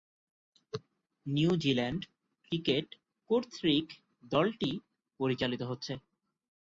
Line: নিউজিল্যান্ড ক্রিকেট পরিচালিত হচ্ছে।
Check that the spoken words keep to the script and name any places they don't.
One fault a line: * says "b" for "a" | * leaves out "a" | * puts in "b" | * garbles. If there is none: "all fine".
* puts in "কর্তৃক দলটি"